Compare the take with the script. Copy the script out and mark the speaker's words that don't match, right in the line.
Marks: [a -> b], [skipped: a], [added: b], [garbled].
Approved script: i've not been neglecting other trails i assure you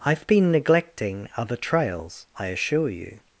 i've [skipped: not] been neglecting other trails i assure you